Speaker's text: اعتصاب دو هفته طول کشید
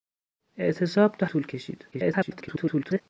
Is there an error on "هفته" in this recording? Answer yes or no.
yes